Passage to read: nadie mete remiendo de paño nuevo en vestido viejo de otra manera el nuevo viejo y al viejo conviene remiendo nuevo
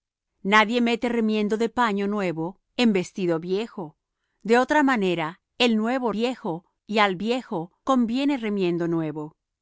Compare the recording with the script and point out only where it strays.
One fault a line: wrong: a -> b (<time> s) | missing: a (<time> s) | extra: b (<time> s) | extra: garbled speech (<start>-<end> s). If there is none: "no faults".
no faults